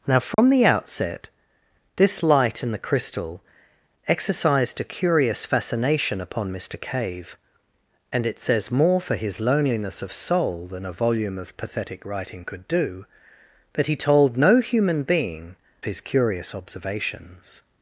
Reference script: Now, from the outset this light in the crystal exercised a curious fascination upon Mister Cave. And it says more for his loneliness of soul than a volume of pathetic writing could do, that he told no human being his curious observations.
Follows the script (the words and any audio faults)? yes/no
no